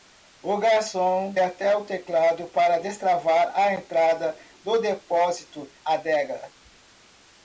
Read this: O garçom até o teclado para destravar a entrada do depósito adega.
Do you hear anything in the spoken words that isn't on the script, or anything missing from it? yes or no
no